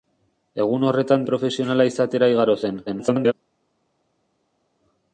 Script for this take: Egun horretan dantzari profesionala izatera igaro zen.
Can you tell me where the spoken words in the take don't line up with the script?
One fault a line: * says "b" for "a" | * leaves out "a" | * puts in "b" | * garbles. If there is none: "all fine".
* leaves out "dantzari"
* garbles